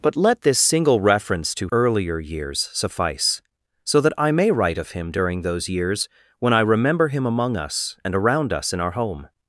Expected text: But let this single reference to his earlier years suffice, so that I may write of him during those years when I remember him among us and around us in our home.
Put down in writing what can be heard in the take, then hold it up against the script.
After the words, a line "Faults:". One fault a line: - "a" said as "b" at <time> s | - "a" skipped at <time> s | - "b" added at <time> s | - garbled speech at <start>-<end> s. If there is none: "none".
But let this single reference to earlier years suffice, so that I may write of him during those years when I remember him among us and around us in our home.
Faults:
- "his" skipped at 1.7 s